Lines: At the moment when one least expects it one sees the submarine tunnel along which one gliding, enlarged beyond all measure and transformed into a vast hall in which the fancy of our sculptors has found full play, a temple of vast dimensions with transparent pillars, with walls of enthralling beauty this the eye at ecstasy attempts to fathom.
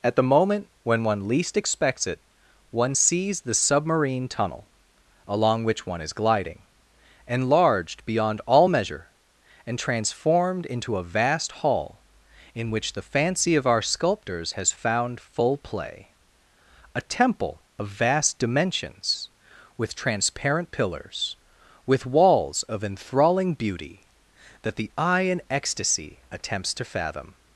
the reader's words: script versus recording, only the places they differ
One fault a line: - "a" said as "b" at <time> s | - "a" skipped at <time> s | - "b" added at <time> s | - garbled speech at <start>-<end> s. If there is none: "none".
- "is" added at 6.0 s
- "this" said as "that" at 24.6 s
- "at" said as "in" at 25.2 s